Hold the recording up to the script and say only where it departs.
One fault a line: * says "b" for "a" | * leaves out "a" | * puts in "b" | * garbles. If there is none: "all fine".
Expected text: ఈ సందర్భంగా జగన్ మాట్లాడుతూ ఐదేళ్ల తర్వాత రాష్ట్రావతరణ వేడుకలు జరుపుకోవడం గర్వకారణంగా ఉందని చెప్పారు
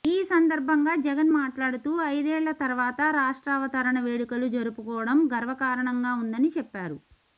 all fine